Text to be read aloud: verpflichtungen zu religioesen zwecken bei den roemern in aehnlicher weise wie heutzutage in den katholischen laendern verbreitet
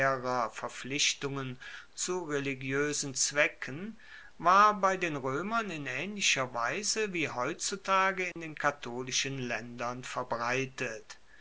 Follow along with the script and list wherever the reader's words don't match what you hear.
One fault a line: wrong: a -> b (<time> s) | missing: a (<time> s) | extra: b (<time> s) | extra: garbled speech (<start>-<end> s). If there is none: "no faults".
extra: war (4.4 s)